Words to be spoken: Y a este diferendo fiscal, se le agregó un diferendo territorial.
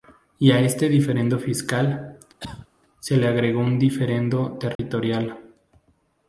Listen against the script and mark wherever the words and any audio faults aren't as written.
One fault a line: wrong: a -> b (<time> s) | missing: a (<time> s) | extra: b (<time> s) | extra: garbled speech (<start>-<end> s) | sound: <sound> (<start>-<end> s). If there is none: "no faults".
sound: cough (2.4-2.7 s)
sound: dropout (4.8-4.8 s)